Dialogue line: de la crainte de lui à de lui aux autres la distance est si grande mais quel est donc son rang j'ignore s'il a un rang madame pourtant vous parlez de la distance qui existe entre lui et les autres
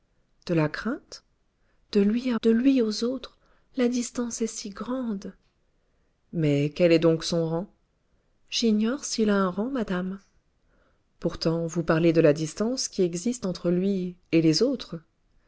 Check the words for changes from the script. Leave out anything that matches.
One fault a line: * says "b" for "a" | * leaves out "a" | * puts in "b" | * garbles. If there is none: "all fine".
all fine